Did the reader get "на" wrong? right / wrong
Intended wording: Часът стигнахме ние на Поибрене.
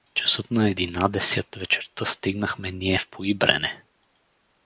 wrong